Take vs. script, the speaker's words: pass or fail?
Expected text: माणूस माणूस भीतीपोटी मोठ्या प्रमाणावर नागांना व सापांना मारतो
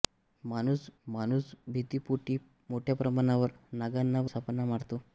pass